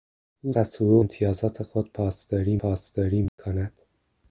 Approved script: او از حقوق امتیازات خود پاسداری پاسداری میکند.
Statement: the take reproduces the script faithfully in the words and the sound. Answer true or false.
false